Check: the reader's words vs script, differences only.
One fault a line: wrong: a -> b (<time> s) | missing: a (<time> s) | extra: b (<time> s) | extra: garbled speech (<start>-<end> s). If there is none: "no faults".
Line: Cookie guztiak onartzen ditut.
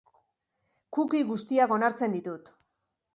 no faults